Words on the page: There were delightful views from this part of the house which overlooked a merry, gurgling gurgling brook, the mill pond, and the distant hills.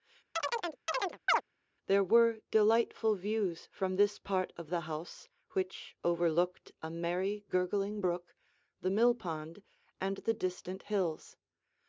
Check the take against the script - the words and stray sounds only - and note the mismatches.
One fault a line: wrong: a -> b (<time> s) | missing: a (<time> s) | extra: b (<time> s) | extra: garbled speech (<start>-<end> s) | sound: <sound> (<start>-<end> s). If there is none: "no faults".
sound: chirp (0.3-1.4 s)
missing: gurgling (8.0 s)